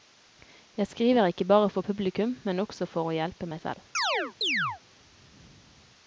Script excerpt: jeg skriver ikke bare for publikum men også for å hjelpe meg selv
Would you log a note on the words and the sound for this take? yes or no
yes